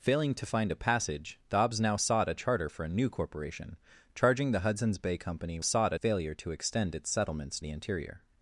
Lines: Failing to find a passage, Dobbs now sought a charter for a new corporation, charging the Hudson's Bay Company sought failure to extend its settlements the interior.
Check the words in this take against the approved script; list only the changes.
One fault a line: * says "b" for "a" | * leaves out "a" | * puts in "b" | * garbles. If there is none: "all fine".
all fine